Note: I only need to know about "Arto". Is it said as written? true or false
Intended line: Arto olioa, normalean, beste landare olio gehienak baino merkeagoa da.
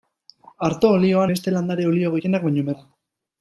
true